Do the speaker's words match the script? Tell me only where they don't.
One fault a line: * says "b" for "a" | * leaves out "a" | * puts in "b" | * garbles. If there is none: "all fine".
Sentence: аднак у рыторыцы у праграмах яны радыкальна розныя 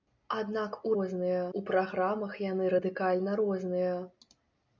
* says "розныя" for "рыторыцы"